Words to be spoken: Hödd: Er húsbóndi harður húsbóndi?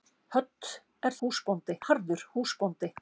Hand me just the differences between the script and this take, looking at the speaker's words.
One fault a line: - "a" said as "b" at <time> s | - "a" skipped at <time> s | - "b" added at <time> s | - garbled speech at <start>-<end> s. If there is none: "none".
none